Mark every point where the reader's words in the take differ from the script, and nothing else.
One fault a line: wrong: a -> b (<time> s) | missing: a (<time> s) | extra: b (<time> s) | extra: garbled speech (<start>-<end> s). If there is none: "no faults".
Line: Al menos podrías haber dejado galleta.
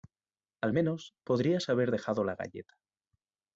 extra: la (2.2 s)